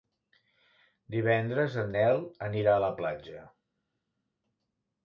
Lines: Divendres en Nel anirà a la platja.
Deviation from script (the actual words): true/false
false